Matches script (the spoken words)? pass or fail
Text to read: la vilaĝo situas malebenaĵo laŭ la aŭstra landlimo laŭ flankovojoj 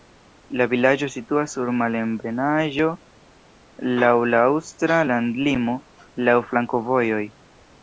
fail